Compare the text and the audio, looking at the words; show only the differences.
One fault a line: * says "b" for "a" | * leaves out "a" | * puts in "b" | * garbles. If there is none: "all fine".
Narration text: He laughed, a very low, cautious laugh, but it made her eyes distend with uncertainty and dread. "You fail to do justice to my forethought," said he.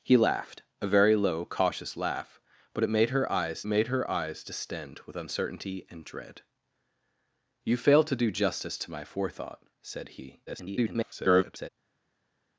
* puts in "made her eyes"
* garbles